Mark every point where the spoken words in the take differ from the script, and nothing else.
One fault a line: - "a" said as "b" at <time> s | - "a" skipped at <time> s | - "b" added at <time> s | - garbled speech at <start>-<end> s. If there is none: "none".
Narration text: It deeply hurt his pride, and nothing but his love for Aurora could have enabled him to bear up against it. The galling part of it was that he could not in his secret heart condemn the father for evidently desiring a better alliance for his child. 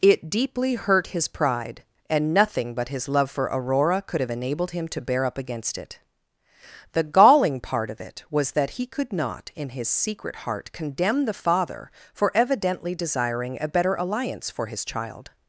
none